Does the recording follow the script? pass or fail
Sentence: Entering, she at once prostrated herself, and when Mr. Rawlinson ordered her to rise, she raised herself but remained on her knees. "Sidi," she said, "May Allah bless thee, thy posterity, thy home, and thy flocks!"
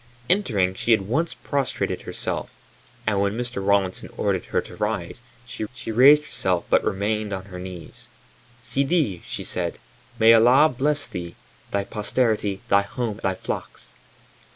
fail